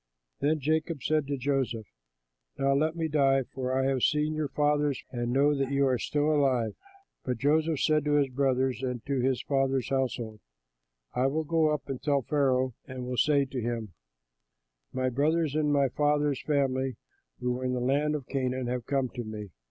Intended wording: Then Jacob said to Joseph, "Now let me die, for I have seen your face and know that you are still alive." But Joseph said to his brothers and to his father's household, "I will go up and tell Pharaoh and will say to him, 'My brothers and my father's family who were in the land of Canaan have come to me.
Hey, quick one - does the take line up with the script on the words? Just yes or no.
no